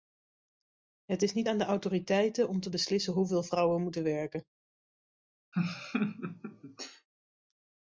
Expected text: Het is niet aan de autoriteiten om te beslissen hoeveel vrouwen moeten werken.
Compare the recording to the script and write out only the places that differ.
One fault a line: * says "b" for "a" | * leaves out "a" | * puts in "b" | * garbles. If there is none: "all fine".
all fine